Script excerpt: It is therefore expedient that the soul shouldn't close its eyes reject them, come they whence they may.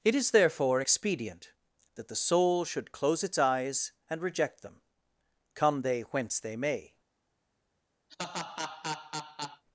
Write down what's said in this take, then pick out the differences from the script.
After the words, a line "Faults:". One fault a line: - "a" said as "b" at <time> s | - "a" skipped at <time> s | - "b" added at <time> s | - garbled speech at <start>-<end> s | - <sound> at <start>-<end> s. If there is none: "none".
It is therefore expedient that the soul should close its eyes and reject them, come they whence they may.
Faults:
- "shouldn't" said as "should" at 2.6 s
- "and" added at 4.1 s
- laugh at 8.1-9.6 s